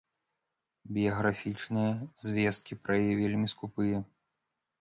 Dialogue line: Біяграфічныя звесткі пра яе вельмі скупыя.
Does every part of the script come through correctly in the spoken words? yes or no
yes